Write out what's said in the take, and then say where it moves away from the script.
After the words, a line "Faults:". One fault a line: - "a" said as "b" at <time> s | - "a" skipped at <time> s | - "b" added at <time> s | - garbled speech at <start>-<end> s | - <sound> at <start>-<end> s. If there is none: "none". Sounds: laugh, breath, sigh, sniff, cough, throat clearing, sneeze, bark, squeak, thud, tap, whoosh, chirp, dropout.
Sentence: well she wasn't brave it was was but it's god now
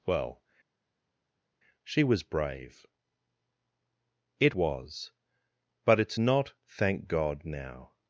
well she was brave it was but it's not thank god now
Faults:
- "wasn't" said as "was" at 2.0 s
- "was" skipped at 5.1 s
- "not thank" added at 6.2 s